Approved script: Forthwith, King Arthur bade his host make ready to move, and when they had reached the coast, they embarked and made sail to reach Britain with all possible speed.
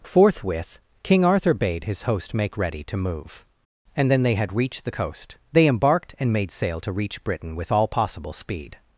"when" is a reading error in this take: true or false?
true